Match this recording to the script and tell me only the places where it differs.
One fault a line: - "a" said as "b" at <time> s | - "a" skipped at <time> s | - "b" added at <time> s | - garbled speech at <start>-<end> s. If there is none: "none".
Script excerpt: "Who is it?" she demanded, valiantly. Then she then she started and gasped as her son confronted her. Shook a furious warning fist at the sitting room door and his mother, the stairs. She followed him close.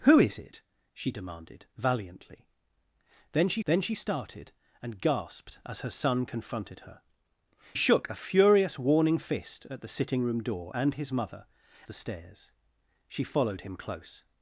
none